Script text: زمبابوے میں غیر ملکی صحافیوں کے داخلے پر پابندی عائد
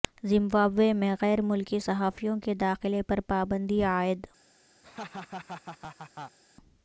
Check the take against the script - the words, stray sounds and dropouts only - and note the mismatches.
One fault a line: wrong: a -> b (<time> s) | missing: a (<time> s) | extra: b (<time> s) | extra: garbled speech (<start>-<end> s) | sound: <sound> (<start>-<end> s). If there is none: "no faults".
sound: laugh (4.8-6.4 s)